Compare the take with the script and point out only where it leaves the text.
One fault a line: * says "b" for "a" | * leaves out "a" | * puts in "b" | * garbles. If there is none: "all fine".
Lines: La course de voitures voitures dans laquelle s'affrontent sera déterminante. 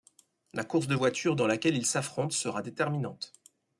* leaves out "voitures"
* puts in "ils"